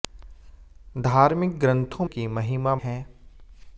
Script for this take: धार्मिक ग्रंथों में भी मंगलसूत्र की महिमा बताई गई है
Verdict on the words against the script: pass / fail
fail